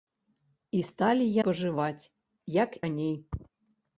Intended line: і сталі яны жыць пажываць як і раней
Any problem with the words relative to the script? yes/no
yes